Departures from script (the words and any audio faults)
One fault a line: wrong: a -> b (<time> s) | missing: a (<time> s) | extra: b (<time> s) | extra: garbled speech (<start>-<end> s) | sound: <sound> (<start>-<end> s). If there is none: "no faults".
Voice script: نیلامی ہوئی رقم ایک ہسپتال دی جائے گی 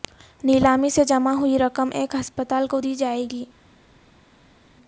extra: سے جمع (0.9 s)
extra: کو (2.6 s)